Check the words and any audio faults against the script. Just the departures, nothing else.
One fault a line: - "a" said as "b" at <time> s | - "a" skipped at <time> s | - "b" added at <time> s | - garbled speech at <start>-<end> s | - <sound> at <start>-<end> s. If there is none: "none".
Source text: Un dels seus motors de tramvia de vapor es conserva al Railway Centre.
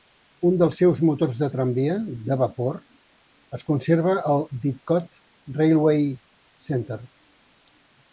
- "Didcot" added at 4.6 s